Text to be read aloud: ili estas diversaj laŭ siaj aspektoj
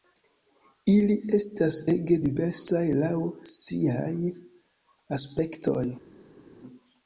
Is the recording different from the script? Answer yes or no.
yes